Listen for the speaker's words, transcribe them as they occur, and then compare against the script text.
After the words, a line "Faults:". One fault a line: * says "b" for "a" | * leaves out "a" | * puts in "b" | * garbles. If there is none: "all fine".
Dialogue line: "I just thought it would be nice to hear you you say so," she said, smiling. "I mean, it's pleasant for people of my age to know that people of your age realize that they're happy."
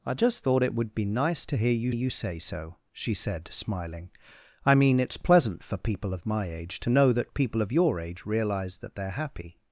"I just thought it would be nice to hear you you say so," she said, smiling. "I mean, it's pleasant for people of my age to know that people of your age realize that they're happy."
Faults:
all fine